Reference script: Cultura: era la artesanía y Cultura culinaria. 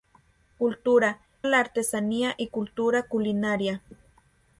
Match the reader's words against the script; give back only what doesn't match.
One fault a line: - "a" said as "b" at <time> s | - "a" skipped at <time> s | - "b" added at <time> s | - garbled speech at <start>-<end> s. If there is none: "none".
- "era" skipped at 1.2 s